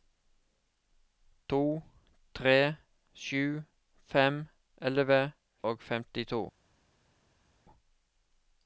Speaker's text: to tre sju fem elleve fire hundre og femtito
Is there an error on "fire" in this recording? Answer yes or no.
yes